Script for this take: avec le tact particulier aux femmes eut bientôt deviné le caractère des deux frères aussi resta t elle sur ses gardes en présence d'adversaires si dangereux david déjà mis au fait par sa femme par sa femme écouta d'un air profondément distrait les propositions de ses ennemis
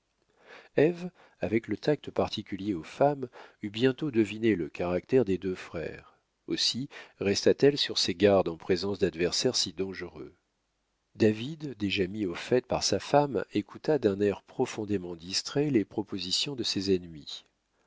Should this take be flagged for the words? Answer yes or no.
yes